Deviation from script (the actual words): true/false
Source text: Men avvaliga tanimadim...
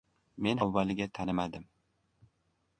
false